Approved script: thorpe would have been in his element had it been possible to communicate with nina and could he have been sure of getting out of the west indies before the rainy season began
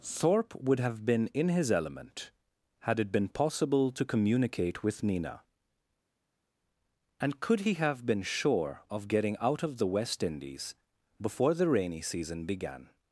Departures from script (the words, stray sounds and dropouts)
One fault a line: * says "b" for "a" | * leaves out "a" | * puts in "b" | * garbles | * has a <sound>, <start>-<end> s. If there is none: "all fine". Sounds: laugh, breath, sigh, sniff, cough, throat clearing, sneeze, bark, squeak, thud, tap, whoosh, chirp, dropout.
all fine